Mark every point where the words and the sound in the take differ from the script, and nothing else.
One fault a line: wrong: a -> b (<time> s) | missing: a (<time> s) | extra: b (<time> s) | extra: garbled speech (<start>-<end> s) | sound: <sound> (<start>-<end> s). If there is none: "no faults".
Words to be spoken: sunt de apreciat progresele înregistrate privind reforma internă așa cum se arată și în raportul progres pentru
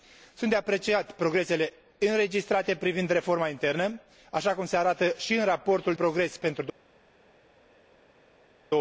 no faults